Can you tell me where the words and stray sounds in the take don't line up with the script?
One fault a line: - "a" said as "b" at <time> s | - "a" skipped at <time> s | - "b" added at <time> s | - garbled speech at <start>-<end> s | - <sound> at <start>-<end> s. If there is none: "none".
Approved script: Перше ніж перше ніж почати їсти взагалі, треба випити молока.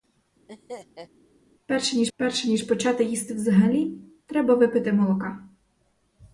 - laugh at 0.5-1.1 s